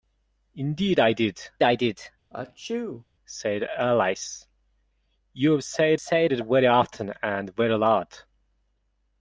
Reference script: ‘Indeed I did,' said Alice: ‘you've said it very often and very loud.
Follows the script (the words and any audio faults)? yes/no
no